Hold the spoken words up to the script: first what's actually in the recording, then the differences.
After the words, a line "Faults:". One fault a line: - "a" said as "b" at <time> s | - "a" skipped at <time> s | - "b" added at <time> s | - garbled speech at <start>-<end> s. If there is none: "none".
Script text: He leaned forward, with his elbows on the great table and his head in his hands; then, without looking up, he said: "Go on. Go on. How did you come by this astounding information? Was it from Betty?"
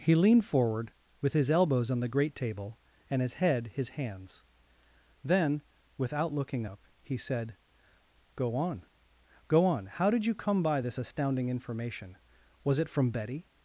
He leaned forward, with his elbows on the great table and his head his hands; then, without looking up, he said: "Go on. Go on. How did you come by this astounding information? Was it from Betty?"
Faults:
- "in" skipped at 3.7 s